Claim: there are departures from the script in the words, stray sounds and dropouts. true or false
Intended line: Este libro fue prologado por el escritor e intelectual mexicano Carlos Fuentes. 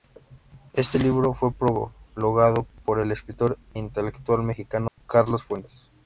true